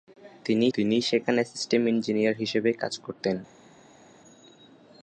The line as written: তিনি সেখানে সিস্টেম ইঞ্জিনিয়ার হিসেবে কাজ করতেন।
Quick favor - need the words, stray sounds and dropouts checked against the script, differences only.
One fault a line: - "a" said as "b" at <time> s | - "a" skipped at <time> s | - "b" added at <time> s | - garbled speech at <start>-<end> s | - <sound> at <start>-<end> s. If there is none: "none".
- "তিনি" added at 0.7 s